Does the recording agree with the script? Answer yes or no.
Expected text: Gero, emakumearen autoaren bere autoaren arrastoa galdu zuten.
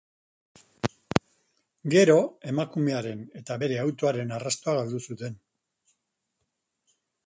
no